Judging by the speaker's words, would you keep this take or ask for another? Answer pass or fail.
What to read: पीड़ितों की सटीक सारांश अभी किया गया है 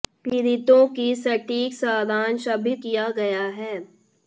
pass